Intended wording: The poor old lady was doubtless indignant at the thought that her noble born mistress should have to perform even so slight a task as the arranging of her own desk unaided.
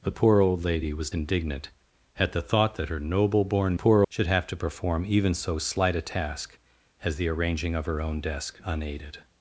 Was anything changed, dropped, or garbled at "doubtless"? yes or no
yes